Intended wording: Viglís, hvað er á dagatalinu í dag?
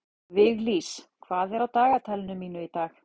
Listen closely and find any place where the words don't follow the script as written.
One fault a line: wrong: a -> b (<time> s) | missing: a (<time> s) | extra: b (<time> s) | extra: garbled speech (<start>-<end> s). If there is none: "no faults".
extra: mínu (2.4 s)